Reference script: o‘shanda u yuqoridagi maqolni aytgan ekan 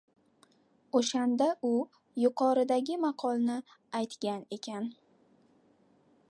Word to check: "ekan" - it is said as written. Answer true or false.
true